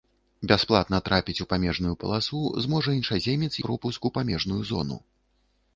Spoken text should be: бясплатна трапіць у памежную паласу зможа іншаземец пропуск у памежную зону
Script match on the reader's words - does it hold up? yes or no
yes